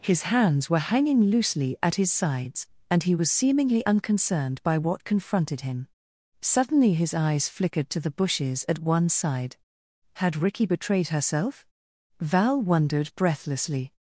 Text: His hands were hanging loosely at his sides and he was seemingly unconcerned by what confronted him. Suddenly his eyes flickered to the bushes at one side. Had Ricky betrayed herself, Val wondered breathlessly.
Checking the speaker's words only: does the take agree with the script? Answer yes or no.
yes